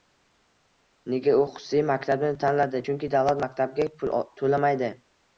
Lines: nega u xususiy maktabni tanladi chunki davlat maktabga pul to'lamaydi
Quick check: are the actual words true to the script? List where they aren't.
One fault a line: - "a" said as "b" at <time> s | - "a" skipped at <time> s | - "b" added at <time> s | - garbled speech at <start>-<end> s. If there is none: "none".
none